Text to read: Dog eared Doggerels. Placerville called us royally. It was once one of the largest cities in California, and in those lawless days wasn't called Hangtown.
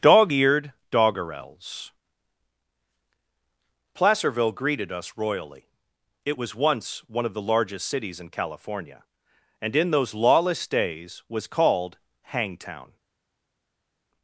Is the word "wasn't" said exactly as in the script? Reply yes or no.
no